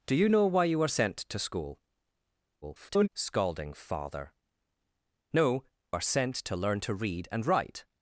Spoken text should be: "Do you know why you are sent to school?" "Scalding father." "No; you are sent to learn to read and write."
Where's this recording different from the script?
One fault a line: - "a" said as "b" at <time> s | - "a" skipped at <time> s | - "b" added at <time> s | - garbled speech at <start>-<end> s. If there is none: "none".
- garbled speech at 2.6-3.1 s
- "you" skipped at 5.6 s